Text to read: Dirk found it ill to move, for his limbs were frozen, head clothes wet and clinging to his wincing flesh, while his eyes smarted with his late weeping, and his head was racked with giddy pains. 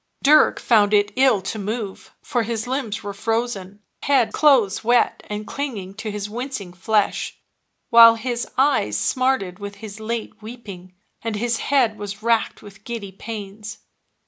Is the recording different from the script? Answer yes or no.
no